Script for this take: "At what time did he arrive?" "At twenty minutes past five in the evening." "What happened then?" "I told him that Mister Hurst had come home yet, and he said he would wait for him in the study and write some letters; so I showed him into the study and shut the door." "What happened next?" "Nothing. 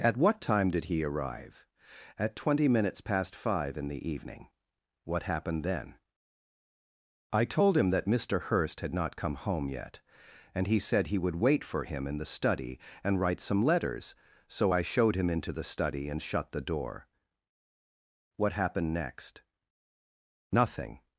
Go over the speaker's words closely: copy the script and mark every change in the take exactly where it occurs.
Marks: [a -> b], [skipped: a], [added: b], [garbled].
"At what time did he arrive?" "At twenty minutes past five in the evening." "What happened then?" "I told him that Mister Hurst had [added: not] come home yet, and he said he would wait for him in the study and write some letters; so I showed him into the study and shut the door." "What happened next?" "Nothing.